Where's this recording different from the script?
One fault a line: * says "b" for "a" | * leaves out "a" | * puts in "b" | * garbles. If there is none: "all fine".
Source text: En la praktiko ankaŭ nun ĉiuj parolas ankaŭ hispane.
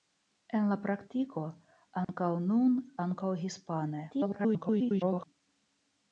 * leaves out "ĉiuj parolas"
* garbles